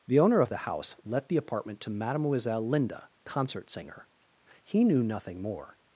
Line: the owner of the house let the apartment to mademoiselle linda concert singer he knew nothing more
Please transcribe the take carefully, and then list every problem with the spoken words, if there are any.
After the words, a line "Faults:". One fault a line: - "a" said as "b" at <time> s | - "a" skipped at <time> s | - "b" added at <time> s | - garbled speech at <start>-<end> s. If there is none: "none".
the owner of the house let the apartment to mademoiselle linda concert singer he knew nothing more
Faults:
none